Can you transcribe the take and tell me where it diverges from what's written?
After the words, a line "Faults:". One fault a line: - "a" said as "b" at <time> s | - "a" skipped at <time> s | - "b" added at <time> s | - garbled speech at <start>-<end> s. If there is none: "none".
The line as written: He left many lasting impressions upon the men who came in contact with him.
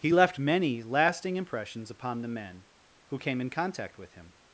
He left many lasting impressions upon the men who came in contact with him.
Faults:
none